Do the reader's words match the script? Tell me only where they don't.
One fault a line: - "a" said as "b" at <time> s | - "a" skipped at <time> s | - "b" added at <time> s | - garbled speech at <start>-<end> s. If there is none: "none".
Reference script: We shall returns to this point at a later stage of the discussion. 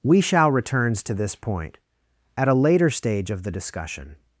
none